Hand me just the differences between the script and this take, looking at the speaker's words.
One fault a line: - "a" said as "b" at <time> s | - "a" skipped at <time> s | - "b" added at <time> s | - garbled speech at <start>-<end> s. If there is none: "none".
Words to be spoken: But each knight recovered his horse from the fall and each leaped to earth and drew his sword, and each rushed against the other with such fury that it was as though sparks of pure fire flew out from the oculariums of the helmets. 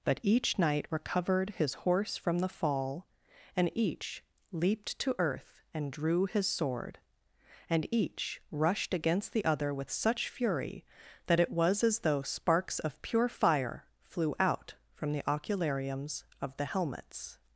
none